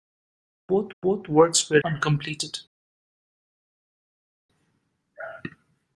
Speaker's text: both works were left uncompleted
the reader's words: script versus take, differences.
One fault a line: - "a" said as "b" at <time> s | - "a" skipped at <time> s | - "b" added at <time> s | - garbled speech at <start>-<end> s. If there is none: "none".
- "both" added at 1.0 s
- "left" skipped at 1.8 s